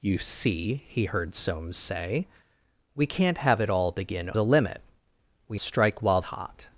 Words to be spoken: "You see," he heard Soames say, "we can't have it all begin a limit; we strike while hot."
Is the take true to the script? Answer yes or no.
yes